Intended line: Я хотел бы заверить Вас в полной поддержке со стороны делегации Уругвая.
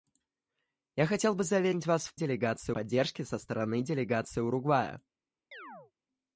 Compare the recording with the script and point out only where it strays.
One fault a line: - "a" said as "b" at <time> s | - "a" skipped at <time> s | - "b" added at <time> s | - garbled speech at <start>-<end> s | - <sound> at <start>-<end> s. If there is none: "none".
- "полной" said as "делегации" at 2.1 s
- chirp at 5.5-5.9 s